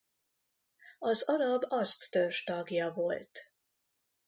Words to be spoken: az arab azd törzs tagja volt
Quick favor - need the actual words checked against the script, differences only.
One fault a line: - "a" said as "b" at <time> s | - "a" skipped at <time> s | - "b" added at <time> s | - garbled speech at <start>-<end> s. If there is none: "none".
none